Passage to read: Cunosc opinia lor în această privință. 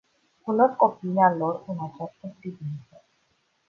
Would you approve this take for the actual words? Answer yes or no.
yes